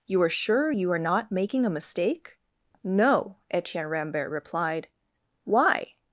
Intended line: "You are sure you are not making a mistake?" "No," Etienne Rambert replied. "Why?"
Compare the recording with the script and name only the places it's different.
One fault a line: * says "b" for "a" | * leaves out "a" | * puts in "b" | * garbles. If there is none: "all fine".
all fine